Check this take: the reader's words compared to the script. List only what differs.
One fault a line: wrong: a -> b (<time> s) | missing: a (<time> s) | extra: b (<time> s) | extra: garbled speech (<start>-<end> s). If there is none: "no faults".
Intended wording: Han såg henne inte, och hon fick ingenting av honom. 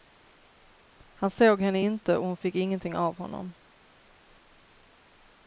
no faults